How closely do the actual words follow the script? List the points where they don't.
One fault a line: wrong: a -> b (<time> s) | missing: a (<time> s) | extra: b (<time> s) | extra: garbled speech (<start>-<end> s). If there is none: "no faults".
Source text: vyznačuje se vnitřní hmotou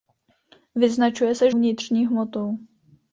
no faults